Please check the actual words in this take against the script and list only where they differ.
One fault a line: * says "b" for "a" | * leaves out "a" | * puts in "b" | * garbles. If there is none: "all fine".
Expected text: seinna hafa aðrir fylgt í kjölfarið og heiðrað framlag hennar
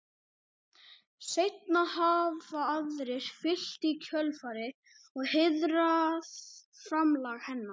all fine